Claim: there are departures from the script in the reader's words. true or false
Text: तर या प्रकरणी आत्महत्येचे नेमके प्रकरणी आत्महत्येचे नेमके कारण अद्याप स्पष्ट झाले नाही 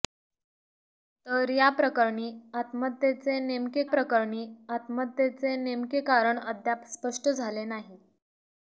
false